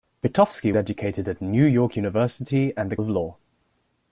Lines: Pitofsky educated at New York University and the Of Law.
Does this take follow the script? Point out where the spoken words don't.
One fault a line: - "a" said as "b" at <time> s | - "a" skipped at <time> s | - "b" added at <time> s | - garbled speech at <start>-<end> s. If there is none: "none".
none